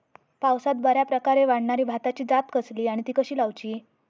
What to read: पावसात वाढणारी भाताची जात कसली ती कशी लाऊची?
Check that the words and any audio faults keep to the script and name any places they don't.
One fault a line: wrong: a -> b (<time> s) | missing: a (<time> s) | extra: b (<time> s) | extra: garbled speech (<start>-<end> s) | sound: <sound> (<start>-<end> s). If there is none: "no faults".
extra: बऱ्याप्रकारे (0.8 s)
extra: आणि (2.9 s)